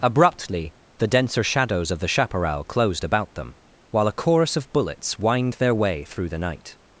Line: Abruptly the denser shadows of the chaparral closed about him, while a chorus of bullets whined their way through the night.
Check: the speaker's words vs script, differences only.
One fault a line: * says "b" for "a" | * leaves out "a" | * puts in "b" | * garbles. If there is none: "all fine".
* says "them" for "him"